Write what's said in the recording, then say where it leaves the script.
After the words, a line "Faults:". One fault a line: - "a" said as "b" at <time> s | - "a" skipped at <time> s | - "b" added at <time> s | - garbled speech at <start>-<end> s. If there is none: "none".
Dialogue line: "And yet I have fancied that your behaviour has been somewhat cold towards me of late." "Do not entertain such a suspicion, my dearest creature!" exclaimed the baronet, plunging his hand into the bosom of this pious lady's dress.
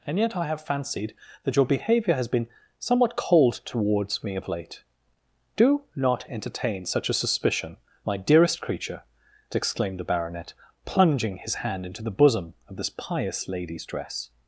"And yet I have fancied that your behaviour has been somewhat cold towards me of late." "Do not entertain such a suspicion, my dearest creature!" exclaimed the baronet, plunging his hand into the bosom of this pious lady's dress.
Faults:
none